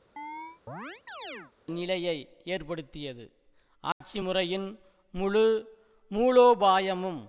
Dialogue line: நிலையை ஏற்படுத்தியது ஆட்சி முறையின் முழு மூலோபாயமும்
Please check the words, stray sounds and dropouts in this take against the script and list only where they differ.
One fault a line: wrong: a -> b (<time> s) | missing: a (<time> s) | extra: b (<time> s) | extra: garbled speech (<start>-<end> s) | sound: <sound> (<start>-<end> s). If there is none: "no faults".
sound: chirp (0.2-1.5 s)
sound: dropout (3.9-4.0 s)